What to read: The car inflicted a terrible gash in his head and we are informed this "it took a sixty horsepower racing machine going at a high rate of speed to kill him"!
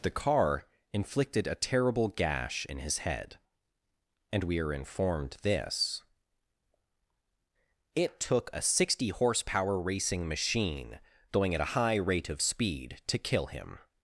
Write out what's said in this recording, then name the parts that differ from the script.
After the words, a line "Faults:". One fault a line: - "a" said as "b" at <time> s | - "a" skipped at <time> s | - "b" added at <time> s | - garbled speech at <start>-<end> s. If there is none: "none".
The car inflicted a terrible gash in his head and we are informed this "it took a sixty horsepower racing machine going at a high rate of speed to kill him"!
Faults:
none